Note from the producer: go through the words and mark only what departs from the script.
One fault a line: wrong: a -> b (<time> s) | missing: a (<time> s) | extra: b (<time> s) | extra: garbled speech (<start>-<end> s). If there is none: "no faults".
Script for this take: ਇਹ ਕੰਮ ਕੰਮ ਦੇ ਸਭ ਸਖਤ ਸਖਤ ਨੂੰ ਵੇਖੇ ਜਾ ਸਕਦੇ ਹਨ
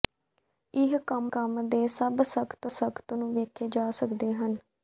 no faults